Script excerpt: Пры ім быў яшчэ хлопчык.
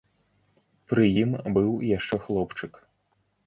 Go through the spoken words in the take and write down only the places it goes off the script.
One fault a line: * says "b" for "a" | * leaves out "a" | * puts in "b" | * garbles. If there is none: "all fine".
all fine